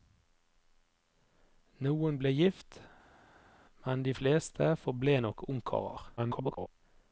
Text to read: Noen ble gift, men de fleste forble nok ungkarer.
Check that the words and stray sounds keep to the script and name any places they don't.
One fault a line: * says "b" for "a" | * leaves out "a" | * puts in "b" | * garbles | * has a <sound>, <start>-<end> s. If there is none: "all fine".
* garbles